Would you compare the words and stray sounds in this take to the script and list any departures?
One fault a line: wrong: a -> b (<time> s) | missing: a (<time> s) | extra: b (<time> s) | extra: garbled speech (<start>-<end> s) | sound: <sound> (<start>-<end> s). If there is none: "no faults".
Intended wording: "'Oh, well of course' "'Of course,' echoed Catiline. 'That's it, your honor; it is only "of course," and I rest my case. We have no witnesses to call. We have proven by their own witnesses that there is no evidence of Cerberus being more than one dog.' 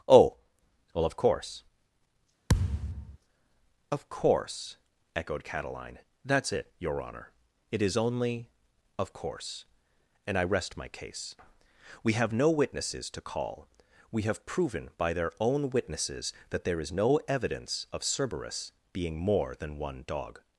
sound: thud (2.5-3.2 s)